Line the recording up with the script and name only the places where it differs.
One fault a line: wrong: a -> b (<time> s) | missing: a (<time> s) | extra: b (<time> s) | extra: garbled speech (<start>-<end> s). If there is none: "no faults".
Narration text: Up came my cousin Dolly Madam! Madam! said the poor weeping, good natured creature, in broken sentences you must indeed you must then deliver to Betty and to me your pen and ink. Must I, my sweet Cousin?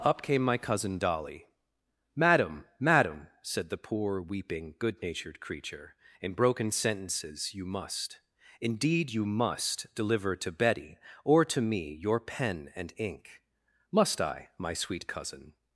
missing: then (9.8 s)
wrong: and -> or (11.2 s)